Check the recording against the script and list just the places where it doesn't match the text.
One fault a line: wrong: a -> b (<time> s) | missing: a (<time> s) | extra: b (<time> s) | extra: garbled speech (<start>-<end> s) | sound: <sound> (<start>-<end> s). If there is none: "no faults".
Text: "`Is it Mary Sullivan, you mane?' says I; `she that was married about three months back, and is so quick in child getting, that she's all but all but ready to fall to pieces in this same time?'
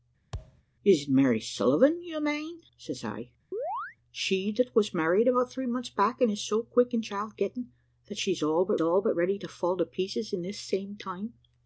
sound: thud (0.3-0.6 s)
sound: chirp (3.5-4.0 s)